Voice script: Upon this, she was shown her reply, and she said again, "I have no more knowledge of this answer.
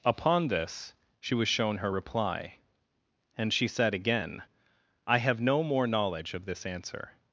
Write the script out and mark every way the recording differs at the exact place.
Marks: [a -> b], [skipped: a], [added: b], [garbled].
Upon this, she was shown her reply, and she said again, "I have no more knowledge of this answer.